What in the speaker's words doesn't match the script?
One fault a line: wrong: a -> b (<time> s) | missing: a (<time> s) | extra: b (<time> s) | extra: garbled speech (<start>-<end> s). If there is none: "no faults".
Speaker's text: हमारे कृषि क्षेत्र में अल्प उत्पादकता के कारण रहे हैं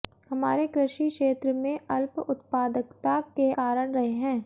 no faults